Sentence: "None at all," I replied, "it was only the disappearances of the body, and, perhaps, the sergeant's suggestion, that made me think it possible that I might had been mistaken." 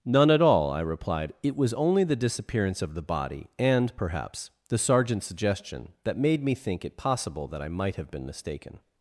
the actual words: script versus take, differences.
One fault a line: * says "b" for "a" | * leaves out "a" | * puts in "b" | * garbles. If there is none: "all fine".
* says "disappearance" for "disappearances"
* says "have" for "had"